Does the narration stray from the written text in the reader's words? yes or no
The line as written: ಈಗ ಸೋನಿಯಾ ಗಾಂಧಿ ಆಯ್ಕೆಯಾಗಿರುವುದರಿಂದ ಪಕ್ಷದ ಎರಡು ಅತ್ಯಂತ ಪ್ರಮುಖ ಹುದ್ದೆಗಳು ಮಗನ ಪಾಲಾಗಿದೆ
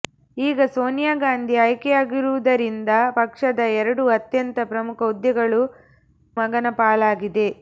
no